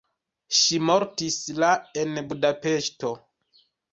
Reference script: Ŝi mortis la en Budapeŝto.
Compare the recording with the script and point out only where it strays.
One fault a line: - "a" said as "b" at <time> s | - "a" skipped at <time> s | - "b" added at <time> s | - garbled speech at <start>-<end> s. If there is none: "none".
none